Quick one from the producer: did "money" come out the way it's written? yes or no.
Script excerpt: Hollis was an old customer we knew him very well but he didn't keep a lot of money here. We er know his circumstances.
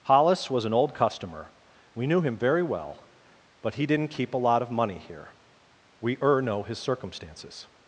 yes